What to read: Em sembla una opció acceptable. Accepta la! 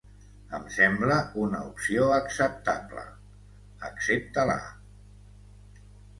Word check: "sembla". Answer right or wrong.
right